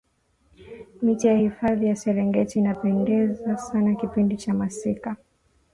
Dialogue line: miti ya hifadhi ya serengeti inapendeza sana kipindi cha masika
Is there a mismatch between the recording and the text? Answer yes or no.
no